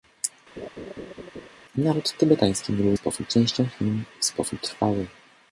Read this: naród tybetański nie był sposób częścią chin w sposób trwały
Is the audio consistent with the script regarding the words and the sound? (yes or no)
no